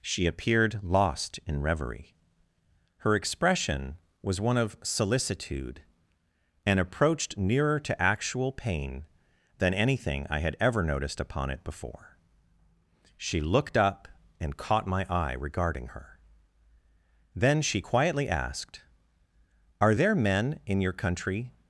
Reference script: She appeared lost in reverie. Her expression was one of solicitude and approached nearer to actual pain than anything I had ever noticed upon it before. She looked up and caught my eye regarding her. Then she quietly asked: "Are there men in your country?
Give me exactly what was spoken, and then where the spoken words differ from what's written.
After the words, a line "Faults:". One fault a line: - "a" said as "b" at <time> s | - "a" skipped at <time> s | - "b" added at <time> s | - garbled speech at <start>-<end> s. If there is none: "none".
She appeared lost in reverie. Her expression was one of solicitude and approached nearer to actual pain than anything I had ever noticed upon it before. She looked up and caught my eye regarding her. Then she quietly asked: "Are there men in your country?
Faults:
none